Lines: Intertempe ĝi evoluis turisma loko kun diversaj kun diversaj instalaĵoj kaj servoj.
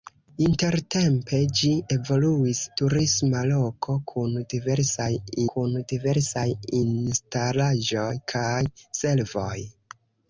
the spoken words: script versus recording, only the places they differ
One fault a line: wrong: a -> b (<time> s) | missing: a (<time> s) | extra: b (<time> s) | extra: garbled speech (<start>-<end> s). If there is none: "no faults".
no faults